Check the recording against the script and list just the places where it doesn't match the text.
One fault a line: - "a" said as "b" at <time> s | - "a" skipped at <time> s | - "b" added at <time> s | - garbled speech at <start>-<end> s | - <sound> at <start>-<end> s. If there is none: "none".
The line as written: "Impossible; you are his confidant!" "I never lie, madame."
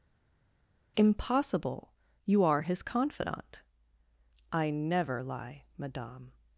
none